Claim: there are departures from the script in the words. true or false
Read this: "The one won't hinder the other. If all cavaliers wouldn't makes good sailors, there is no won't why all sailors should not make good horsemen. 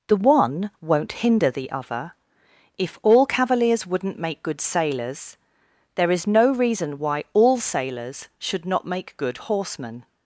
true